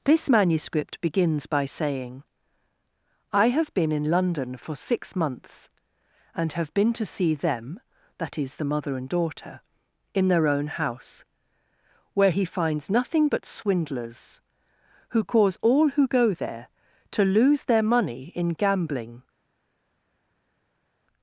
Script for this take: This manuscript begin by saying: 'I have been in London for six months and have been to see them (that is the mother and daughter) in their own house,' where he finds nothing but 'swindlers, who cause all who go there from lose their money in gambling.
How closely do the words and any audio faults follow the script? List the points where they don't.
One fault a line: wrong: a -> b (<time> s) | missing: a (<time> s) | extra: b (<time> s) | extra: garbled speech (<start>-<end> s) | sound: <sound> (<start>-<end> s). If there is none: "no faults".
wrong: begin -> begins (1.0 s)
wrong: from -> to (17.1 s)